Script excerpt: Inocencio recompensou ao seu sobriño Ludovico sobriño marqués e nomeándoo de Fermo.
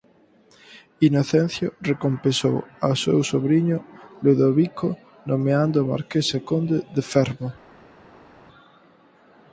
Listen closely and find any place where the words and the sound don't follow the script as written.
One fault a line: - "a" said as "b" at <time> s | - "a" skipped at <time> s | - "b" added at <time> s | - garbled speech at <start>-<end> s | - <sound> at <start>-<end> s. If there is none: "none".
- "sobriño" said as "nomeándoo" at 5.3 s
- "nomeándoo" said as "conde" at 6.5 s